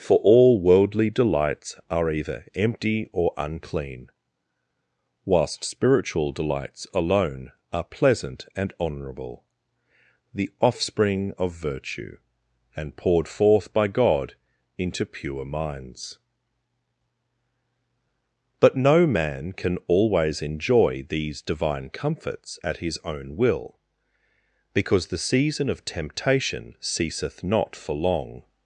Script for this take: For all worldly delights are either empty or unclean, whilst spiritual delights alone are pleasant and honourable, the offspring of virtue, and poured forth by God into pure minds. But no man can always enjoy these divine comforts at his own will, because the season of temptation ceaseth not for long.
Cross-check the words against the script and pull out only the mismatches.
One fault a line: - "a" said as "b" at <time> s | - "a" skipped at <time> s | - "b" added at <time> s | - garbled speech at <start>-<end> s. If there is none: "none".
none